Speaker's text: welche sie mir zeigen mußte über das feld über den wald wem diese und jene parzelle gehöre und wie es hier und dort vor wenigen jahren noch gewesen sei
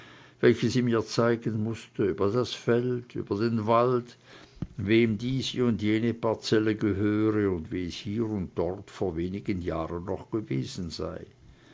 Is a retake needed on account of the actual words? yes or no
no